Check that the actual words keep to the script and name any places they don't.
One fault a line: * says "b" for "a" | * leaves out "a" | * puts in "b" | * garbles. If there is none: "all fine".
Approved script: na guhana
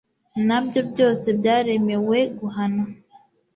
* puts in "byo byose byaremewe"